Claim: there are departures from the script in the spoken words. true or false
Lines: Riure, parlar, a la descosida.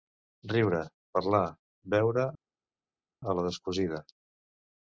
true